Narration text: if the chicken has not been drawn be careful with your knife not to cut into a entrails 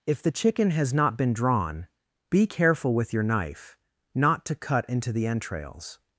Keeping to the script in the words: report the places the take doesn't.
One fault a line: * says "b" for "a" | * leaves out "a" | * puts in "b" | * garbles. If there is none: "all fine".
* says "the" for "a"